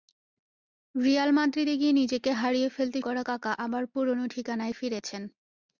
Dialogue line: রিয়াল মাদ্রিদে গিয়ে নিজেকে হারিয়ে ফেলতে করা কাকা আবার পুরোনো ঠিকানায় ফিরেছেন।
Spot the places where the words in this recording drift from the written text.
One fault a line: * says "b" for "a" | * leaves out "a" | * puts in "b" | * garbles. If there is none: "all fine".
all fine